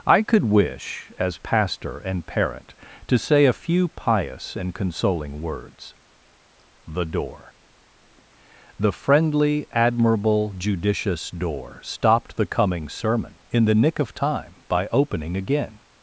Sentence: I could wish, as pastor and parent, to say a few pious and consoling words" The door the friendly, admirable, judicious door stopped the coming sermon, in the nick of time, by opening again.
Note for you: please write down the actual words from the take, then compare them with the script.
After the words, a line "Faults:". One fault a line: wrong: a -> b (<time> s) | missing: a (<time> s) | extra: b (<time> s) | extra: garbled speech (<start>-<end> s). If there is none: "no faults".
I could wish, as pastor and parent, to say a few pious and consoling words" The door the friendly, admirable, judicious door stopped the coming sermon, in the nick of time, by opening again.
Faults:
no faults